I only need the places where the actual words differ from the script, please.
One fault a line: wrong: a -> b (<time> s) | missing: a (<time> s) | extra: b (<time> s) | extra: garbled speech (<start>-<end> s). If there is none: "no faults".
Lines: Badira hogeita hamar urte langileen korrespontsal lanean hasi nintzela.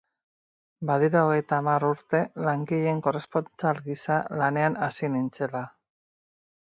extra: gisa (3.9 s)